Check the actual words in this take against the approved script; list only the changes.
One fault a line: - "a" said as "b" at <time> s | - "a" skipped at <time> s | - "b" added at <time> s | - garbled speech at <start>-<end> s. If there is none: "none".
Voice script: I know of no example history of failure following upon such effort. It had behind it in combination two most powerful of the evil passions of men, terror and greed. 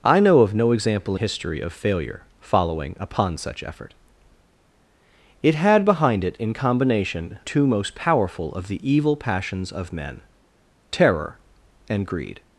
none